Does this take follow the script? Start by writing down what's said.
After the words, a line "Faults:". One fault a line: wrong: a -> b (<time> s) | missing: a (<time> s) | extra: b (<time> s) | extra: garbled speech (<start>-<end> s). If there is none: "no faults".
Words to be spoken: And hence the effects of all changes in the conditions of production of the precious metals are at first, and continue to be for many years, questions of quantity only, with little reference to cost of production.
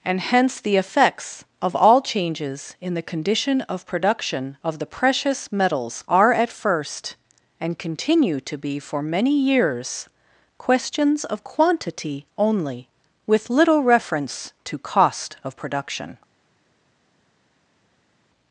And hence the effects of all changes in the condition of production of the precious metals are at first, and continue to be for many years, questions of quantity only, with little reference to cost of production.
Faults:
wrong: conditions -> condition (3.0 s)